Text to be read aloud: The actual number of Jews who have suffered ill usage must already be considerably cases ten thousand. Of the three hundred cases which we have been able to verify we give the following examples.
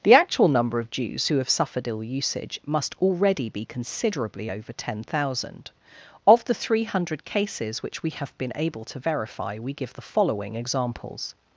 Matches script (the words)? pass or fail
fail